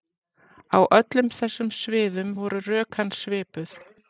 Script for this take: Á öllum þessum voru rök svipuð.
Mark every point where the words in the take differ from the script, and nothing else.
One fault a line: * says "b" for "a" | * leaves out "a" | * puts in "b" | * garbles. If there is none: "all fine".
* puts in "sviðum"
* puts in "hans"